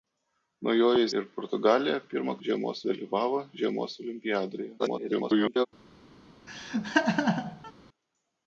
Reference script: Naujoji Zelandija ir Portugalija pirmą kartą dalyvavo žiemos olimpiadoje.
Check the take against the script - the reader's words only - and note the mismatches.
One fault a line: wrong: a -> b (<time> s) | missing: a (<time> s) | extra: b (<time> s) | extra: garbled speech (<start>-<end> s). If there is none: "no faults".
missing: Zelandija (1.1 s)
wrong: kartą -> žiemos (2.5 s)
extra: garbled speech (4.8-5.7 s)